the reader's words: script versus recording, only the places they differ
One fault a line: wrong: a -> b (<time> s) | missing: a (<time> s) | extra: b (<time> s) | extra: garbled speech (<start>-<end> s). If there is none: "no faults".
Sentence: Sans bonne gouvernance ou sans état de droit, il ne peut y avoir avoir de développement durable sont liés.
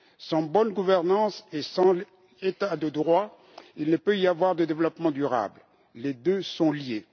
wrong: ou -> et (1.5 s)
missing: avoir (4.5 s)
extra: les deux (6.0 s)